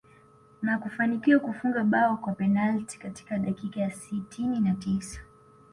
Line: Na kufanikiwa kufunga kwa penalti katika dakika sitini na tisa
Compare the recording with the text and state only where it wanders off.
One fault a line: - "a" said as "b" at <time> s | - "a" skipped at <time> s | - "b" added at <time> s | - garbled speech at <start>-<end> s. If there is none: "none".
- "bao" added at 1.8 s
- "ya" added at 3.8 s